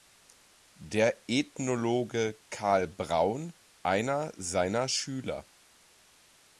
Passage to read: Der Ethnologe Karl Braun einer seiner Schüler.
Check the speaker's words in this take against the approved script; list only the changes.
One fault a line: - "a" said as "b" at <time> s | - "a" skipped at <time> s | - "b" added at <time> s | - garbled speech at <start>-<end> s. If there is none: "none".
none